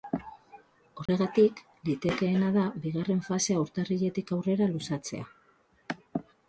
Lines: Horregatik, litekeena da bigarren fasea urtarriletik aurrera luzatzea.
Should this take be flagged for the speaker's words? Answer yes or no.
no